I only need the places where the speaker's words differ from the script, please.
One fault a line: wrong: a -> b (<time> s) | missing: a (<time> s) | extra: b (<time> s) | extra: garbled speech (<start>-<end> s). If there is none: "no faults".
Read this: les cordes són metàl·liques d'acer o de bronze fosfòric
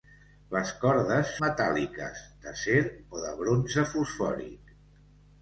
missing: són (1.3 s)